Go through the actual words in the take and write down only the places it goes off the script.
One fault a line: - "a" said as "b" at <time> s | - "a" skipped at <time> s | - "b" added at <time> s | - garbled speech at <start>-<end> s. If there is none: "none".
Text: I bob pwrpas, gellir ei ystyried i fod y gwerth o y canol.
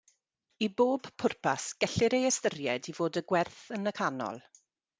- "o" said as "yn" at 3.8 s